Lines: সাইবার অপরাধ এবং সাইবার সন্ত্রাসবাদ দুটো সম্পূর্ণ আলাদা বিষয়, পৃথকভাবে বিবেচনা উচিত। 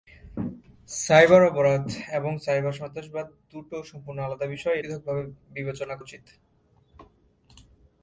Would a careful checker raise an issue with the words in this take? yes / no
no